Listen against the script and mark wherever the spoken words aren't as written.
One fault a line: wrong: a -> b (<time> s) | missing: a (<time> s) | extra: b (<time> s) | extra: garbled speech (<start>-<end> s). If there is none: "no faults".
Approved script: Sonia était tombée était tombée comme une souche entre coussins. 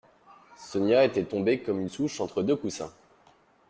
missing: était tombée (1.6 s)
extra: deux (2.4 s)